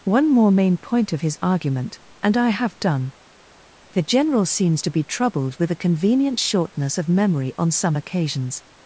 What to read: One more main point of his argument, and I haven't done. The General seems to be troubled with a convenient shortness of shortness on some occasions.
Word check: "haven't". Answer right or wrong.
wrong